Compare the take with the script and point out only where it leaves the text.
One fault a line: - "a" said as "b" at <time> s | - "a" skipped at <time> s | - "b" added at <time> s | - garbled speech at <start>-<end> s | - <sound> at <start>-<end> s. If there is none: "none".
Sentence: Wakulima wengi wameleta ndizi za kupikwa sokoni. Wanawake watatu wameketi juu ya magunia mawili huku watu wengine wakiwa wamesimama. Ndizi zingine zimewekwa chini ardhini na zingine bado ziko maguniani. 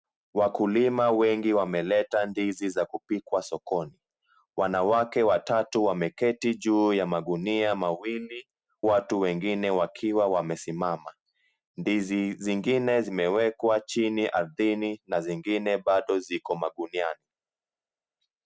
- "huku" skipped at 8.5 s